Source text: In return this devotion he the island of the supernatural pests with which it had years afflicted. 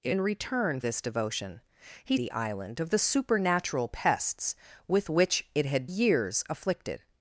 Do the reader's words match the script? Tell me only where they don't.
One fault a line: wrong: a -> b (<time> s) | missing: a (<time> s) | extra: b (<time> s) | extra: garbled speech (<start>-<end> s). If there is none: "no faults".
no faults